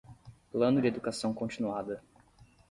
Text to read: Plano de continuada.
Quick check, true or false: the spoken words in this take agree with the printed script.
false